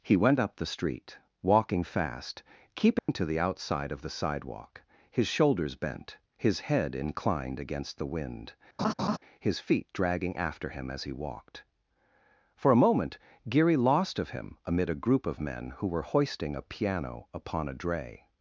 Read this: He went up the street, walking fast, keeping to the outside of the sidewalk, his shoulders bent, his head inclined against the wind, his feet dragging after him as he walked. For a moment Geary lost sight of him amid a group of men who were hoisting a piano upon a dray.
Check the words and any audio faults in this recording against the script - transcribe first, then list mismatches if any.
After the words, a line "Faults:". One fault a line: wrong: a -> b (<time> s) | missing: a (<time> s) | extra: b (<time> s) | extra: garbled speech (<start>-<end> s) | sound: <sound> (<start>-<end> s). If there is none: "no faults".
He went up the street, walking fast, keeping to the outside of the sidewalk, his shoulders bent, his head inclined against the wind, his feet dragging after him as he walked. For a moment Geary lost of him amid a group of men who were hoisting a piano upon a dray.
Faults:
sound: dropout (3.0-3.1 s)
sound: laugh (8.8-9.2 s)
missing: sight (14.2 s)